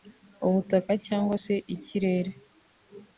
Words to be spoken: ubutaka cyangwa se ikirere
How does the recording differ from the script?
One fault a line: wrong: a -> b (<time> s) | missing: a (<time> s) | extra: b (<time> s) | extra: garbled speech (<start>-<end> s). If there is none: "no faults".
no faults